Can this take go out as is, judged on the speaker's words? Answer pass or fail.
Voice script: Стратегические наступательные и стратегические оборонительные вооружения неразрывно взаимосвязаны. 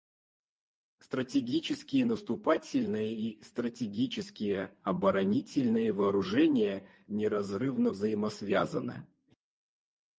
pass